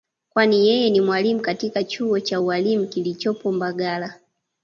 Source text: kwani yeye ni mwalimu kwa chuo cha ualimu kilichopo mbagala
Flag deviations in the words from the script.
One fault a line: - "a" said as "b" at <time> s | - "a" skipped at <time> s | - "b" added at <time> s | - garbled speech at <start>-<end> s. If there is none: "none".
- "kwa" said as "katika" at 1.4 s